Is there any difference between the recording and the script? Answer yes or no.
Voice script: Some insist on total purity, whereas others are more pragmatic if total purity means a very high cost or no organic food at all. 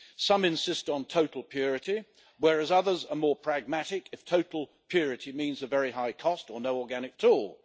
yes